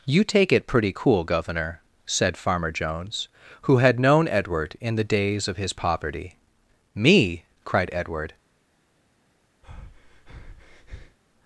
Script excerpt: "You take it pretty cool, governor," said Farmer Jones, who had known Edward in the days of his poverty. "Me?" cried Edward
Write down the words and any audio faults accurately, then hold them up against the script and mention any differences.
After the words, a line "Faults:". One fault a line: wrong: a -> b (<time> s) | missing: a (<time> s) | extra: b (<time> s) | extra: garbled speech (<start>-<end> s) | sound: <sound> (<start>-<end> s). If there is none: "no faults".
"You take it pretty cool, governor," said Farmer Jones, who had known Edward in the days of his poverty. "Me?" cried Edward
Faults:
sound: breath (9.6-11.2 s)